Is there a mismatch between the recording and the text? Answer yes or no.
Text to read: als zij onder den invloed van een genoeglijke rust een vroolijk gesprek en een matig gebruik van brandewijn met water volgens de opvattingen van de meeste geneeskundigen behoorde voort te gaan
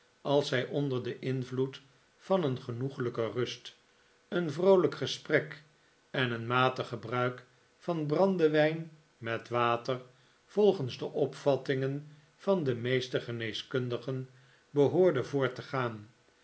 no